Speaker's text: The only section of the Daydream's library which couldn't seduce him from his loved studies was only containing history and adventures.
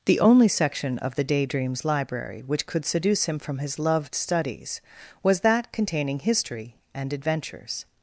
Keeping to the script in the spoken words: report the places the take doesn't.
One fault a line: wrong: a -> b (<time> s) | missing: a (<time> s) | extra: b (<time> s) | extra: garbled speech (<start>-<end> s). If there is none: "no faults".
wrong: couldn't -> could (2.6 s)
wrong: only -> that (5.4 s)